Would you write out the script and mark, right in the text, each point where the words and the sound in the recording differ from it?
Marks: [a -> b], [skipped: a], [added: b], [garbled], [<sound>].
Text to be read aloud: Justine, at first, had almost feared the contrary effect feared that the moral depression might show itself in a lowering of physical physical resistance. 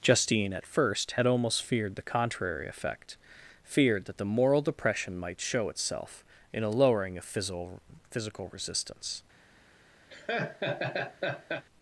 Justine, at first, had almost feared the contrary effect feared that the moral depression might show itself in a lowering of physical physical resistance. [laugh]